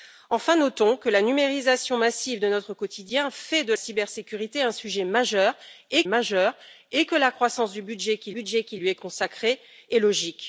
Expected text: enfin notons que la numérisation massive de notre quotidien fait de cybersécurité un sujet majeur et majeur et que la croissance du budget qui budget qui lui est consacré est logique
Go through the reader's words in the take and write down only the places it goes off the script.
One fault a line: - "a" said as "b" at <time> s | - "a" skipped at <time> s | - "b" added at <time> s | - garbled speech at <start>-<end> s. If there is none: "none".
none